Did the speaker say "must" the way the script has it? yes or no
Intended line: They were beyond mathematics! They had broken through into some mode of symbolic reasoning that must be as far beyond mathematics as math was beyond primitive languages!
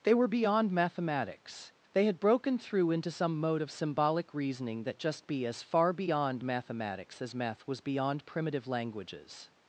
no